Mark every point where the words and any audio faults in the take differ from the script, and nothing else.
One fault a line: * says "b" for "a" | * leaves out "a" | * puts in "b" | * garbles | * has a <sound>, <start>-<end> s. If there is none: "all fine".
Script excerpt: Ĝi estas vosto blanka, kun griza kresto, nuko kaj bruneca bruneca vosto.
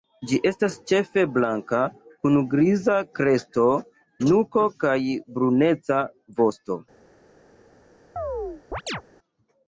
* says "ĉefe" for "vosto"
* leaves out "bruneca"
* has a chirp, 8.2-9.0 s